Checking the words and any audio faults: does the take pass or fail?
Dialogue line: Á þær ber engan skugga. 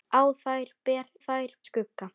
fail